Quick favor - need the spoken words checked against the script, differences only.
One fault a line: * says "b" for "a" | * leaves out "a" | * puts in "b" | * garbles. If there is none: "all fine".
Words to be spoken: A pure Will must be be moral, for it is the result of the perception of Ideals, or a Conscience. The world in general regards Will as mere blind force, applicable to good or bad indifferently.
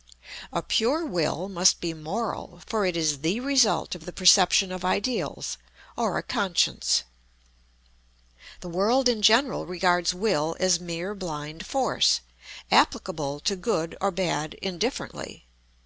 * leaves out "be"